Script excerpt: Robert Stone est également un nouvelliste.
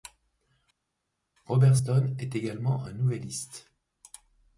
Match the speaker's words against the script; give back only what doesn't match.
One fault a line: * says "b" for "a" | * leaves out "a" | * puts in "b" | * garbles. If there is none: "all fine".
all fine